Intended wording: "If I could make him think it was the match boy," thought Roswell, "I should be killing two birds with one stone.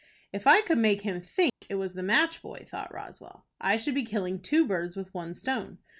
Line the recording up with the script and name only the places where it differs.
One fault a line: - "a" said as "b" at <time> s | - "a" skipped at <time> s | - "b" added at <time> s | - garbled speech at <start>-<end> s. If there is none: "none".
none